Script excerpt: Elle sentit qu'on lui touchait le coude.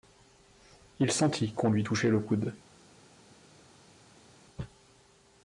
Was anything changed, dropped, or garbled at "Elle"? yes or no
yes